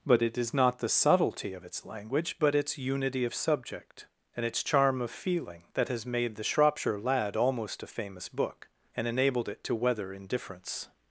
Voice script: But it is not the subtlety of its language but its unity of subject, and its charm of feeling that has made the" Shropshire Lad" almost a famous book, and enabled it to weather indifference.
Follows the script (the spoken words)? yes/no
yes